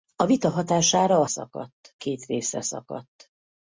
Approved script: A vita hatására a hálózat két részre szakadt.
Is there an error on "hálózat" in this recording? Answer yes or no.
yes